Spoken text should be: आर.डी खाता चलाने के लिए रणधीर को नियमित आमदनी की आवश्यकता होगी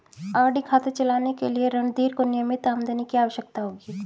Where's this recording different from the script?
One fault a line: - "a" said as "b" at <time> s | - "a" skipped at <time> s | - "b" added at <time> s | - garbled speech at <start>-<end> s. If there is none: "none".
none